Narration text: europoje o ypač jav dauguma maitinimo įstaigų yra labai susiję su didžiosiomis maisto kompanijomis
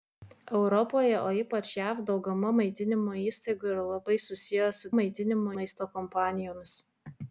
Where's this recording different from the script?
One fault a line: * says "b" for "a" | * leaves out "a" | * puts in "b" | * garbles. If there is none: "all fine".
* says "maitinimo" for "didžiosiomis"